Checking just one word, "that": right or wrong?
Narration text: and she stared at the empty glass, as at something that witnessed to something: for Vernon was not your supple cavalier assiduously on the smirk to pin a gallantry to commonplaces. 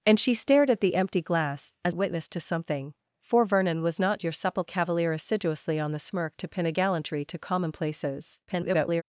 wrong